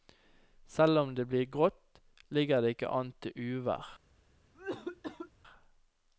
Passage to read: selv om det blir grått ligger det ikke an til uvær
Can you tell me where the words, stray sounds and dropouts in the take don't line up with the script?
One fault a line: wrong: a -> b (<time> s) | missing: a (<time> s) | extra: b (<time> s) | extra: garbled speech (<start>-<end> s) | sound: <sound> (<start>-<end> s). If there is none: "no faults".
sound: cough (4.5-5.3 s)